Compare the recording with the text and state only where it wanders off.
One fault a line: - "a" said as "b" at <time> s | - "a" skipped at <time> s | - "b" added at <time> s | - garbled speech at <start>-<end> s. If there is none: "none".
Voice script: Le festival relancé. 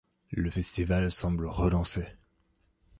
- "semble" added at 1.1 s